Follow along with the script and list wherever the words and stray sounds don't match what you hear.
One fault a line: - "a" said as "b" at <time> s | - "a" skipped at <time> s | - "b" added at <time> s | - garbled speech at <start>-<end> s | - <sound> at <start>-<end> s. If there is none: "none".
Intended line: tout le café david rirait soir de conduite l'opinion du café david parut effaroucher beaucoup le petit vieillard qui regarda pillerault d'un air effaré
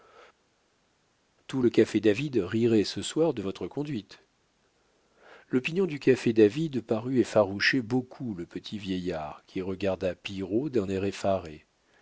- "ce" added at 2.8 s
- "votre" added at 3.4 s